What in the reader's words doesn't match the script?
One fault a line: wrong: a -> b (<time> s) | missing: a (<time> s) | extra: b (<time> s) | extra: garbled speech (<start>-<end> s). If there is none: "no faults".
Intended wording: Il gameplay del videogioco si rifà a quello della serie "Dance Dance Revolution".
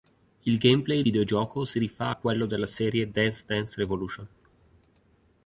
missing: del (1.0 s)